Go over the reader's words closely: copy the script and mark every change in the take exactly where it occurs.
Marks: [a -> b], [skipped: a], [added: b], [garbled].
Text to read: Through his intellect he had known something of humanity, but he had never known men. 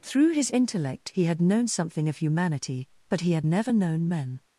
Through his intellect he had known something of humanity, but he had never known men.